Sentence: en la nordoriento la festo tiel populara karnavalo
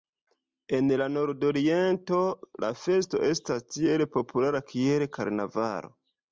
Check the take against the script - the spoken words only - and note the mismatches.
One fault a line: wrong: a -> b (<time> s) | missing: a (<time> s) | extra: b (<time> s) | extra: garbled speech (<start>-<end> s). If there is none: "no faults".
extra: estas (3.3 s)
extra: kiel (4.7 s)